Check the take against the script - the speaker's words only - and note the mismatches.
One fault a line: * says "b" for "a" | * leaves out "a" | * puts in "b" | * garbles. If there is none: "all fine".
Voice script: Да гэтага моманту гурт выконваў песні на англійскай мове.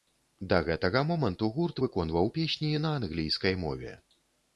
all fine